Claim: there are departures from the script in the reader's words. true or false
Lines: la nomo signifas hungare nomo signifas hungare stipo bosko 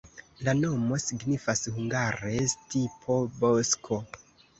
true